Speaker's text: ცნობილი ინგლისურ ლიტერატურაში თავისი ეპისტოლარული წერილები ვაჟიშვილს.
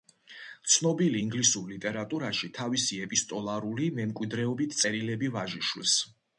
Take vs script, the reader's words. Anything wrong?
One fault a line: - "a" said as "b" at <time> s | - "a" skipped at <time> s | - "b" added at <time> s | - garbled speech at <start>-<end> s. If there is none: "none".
- "მემკვიდრეობით" added at 4.0 s